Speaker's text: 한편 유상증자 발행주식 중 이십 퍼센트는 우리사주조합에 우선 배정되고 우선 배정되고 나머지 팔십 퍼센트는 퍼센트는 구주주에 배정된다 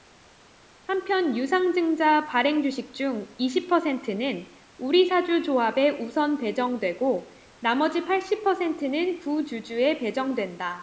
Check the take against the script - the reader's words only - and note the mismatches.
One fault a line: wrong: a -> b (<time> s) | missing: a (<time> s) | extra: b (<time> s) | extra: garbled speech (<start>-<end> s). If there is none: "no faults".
missing: 우선 배정되고 (7.3 s)
missing: 퍼센트는 (9.2 s)